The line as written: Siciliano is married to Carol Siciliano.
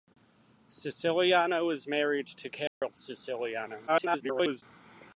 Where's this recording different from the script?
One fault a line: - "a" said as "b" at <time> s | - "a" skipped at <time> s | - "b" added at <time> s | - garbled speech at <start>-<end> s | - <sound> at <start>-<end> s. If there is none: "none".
- dropout at 2.7-2.8 s
- garbled speech at 3.9-4.6 s